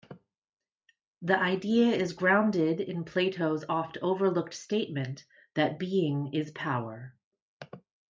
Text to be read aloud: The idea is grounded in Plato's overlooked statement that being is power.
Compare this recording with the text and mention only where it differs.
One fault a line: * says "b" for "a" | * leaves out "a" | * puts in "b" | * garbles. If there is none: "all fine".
* puts in "oft"